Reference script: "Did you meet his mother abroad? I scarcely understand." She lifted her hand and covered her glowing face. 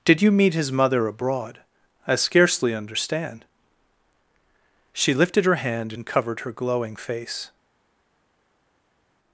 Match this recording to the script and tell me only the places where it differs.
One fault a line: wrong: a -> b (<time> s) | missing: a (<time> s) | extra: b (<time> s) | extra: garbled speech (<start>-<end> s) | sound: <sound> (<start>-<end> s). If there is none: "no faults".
no faults